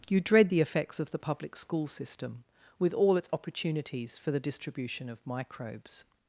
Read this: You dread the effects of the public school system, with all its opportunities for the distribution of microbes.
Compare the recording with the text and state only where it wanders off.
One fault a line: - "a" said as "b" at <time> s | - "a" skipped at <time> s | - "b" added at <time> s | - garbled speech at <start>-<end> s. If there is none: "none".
none